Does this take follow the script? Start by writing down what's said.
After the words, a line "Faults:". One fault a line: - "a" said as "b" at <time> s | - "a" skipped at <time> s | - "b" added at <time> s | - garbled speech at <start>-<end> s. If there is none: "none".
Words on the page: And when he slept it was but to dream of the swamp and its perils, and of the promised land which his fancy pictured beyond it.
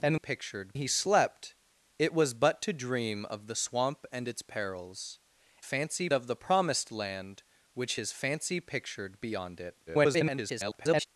And pictured he slept it was but to dream of the swamp and its perils, fancy of the promised land which his fancy pictured beyond it. [garbled]
Faults:
- "when" said as "pictured" at 0.1 s
- "and" said as "fancy" at 5.6 s
- garbled speech at 9.9-11.1 s